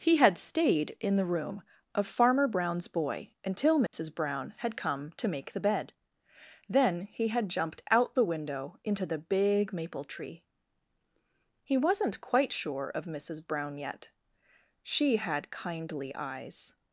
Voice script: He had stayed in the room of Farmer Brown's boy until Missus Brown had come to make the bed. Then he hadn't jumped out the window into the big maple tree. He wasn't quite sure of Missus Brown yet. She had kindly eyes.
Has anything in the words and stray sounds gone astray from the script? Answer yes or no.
yes